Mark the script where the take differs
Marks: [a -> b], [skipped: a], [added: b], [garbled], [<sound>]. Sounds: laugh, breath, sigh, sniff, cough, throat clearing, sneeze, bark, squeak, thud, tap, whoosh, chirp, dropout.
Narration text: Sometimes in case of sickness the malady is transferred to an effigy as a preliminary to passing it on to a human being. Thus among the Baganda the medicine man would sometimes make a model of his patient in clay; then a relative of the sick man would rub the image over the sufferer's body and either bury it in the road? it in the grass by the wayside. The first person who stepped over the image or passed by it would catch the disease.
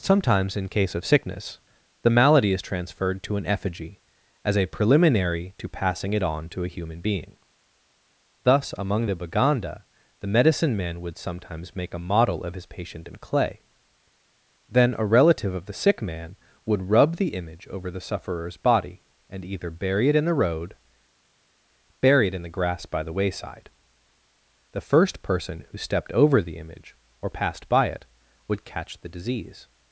Sometimes in case of sickness the malady is transferred to an effigy as a preliminary to passing it on to a human being. Thus among the Baganda the medicine man would sometimes make a model of his patient in clay; then a relative of the sick man would rub the image over the sufferer's body and either bury it in the road? [added: bury] it in the grass by the wayside. The first person who stepped over the image or passed by it would catch the disease.